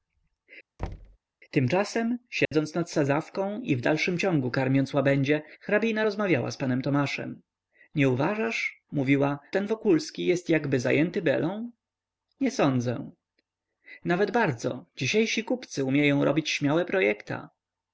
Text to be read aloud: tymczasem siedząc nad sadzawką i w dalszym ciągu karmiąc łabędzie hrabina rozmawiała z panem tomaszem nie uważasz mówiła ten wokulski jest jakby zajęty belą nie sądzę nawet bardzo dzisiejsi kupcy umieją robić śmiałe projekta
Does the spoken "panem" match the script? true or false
true